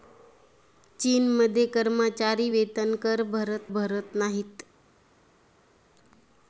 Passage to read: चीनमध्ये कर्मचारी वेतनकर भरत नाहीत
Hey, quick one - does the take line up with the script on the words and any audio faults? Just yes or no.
no